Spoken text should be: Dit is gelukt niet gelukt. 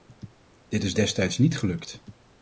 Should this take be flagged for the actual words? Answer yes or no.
yes